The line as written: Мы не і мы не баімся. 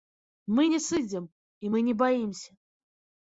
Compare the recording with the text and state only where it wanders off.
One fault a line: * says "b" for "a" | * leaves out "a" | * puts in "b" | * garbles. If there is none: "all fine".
* puts in "сыдзем"